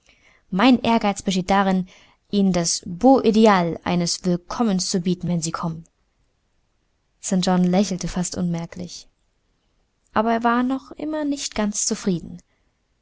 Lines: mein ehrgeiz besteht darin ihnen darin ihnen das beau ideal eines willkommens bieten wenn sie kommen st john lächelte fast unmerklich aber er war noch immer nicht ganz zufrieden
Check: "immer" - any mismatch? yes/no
no